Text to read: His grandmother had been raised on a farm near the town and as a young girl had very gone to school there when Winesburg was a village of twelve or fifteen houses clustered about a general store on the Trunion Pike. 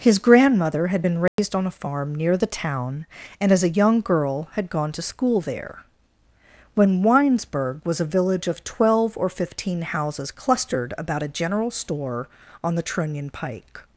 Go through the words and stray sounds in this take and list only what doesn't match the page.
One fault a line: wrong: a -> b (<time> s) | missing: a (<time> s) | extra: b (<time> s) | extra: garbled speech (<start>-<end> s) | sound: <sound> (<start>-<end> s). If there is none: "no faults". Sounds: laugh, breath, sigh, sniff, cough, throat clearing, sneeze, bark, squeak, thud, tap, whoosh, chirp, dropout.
sound: dropout (1.3-1.4 s)
missing: very (4.7 s)